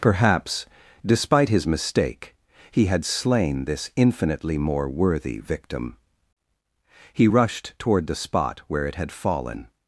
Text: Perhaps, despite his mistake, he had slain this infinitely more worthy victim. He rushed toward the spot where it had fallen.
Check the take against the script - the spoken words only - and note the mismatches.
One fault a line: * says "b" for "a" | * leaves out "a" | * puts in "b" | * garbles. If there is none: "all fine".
all fine